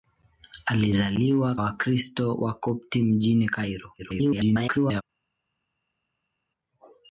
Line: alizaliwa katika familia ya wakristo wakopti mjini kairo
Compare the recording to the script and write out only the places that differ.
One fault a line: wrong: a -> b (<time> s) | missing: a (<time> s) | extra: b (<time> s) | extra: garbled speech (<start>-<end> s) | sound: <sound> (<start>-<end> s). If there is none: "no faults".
missing: katika familia ya (1.5 s)
extra: garbled speech (4.0-5.0 s)